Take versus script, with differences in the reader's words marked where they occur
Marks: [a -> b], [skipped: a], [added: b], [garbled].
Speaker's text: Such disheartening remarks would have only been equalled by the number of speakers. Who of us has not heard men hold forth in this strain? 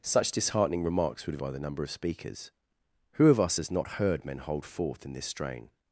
Such disheartening remarks would have [skipped: only been equalled] by the number of speakers. Who of us has not heard men hold forth in this strain?